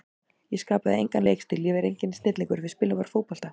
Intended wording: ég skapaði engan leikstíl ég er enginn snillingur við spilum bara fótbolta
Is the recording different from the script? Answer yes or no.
no